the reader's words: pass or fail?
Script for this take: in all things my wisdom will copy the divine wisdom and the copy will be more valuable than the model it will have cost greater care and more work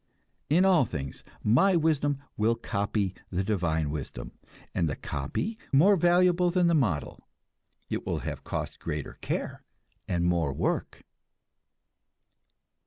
fail